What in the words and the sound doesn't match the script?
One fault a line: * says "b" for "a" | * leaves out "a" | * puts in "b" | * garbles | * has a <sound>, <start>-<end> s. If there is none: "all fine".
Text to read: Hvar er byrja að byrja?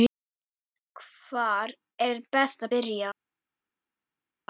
* says "best" for "byrja"